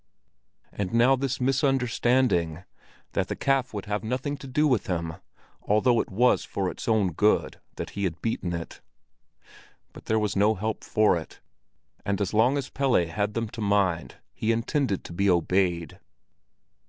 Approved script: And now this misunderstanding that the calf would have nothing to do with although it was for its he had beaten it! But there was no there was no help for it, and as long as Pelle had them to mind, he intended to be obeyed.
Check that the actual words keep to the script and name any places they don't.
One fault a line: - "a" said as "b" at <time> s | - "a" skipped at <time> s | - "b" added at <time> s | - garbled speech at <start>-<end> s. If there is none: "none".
- "him" added at 4.9 s
- "own good that" added at 6.9 s
- "there was no" skipped at 10.5 s